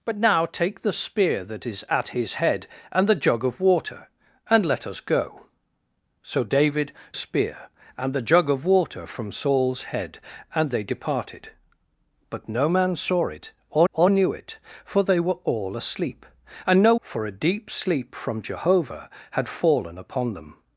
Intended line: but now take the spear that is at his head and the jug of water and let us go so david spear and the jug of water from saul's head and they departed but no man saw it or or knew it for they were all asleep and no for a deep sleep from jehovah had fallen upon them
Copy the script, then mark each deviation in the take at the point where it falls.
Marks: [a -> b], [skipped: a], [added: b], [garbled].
but now take the spear that is at his head and the jug of water and let us go so david spear and the jug of water from saul's head and they departed but no man saw it or or knew it for they were all asleep and no for a deep sleep from jehovah had fallen upon them